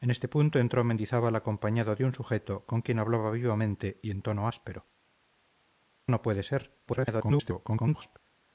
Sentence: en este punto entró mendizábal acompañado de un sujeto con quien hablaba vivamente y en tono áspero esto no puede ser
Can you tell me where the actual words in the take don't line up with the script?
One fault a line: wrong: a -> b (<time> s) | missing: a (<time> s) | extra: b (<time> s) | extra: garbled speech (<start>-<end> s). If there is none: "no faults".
missing: esto (4.9 s)
extra: garbled speech (6.9-8.2 s)